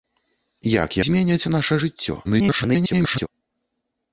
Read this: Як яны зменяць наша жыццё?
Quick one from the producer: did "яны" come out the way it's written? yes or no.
no